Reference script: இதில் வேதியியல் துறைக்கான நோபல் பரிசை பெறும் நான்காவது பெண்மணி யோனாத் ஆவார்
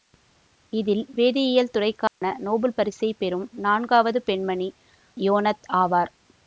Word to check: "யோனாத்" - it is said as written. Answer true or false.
true